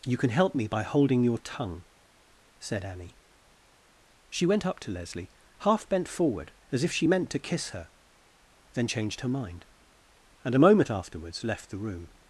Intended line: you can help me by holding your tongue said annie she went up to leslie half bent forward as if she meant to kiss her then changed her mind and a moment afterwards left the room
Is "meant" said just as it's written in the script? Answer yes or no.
yes